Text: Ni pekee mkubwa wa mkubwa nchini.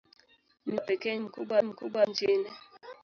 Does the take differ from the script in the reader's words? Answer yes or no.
no